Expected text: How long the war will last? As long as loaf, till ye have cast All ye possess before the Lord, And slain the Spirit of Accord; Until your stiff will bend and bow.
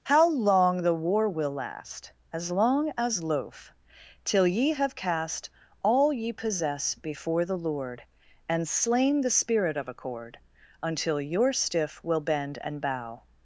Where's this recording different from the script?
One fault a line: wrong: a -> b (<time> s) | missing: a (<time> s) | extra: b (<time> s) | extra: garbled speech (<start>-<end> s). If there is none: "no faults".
no faults